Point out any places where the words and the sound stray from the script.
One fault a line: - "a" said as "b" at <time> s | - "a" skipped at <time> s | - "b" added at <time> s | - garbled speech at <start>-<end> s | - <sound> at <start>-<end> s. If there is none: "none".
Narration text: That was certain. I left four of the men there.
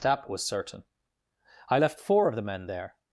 none